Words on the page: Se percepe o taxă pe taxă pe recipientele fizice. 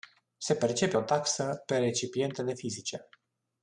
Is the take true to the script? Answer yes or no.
no